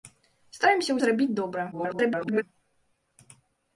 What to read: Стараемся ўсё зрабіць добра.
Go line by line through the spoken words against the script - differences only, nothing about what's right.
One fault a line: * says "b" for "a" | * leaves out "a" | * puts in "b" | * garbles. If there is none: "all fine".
* leaves out "ўсё"
* garbles